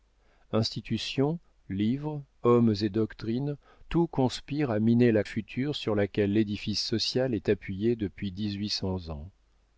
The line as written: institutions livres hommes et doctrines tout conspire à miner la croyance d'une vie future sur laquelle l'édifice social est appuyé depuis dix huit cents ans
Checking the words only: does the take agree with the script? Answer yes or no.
no